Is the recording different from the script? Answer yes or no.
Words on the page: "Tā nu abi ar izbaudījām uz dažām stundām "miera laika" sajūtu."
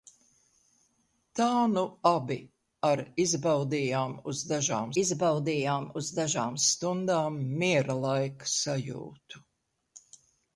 yes